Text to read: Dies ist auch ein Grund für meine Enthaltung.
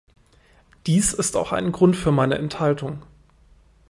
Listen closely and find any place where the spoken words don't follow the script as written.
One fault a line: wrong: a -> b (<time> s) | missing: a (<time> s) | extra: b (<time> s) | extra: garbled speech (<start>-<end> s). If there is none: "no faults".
no faults